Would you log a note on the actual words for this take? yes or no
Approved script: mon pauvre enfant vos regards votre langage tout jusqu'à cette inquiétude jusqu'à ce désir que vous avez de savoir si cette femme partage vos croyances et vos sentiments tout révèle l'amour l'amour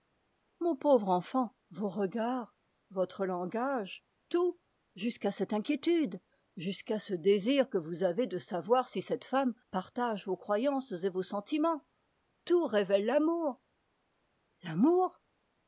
no